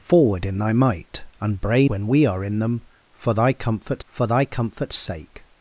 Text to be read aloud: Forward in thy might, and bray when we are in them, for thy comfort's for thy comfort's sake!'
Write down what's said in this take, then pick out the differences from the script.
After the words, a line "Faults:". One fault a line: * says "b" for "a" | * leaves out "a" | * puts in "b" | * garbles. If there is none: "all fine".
Forward in thy might, and bray when we are in them, for thy comfort's for thy comfort's sake!'
Faults:
all fine